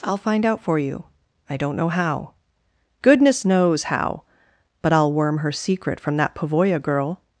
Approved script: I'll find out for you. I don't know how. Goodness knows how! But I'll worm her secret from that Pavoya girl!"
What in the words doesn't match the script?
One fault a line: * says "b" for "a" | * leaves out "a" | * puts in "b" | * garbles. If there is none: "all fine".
all fine